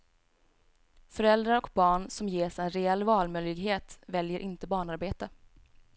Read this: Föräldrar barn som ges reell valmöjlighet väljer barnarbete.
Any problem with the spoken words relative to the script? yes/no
yes